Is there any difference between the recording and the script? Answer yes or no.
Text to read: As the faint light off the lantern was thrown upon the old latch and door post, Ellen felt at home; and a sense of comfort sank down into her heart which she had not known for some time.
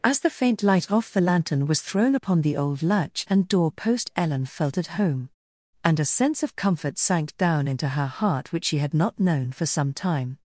no